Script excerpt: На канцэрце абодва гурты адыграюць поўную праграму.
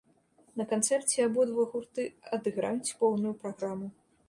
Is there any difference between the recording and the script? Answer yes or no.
no